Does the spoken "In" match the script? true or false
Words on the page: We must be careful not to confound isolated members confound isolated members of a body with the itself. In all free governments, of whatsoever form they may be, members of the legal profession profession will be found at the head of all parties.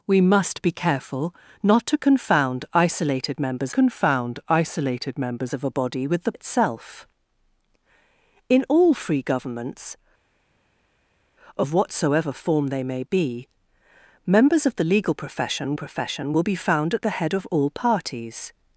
true